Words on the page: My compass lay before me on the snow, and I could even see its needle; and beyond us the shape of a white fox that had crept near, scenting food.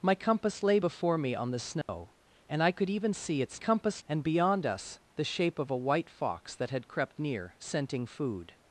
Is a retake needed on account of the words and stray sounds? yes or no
yes